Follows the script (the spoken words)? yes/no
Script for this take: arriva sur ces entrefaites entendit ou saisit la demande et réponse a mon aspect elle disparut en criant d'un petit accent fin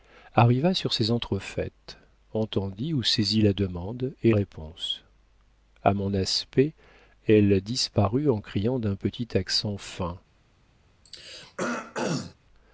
yes